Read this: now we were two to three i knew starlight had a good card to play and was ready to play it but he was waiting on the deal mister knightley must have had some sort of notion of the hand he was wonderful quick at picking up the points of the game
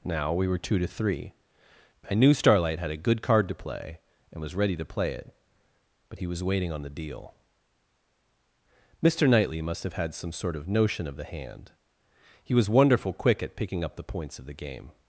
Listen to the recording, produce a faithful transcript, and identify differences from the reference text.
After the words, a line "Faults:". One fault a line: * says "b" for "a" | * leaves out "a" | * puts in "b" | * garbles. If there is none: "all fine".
now we were two to three i knew starlight had a good card to play and was ready to play it but he was waiting on the deal mister knightley must have had some sort of notion of the hand he was wonderful quick at picking up the points of the game
Faults:
all fine